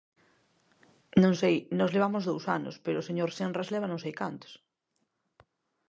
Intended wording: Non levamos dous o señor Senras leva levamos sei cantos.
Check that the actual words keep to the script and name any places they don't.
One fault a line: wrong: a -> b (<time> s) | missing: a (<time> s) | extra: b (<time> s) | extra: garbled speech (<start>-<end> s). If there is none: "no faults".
extra: sei nós (1.4 s)
extra: anos pero (2.6 s)
wrong: levamos -> non (3.9 s)